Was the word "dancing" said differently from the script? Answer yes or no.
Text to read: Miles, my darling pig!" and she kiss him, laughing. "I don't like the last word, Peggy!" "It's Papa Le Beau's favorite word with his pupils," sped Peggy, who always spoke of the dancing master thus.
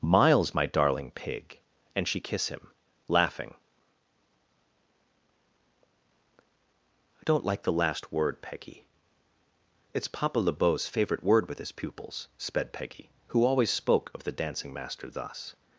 no